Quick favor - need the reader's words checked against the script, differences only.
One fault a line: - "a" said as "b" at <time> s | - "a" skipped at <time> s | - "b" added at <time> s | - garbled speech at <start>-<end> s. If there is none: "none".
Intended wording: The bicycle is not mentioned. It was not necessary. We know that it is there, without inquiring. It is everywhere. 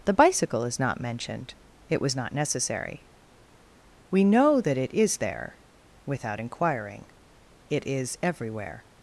none